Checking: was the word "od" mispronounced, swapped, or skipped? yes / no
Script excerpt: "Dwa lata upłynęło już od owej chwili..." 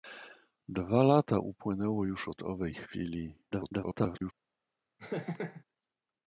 no